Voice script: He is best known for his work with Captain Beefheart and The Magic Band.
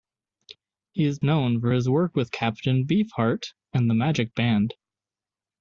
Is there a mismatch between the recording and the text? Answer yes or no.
yes